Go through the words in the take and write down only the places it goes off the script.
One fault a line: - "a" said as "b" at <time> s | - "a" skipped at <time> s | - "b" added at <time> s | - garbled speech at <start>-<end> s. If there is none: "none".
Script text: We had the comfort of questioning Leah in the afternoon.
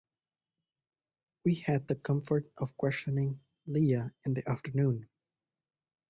none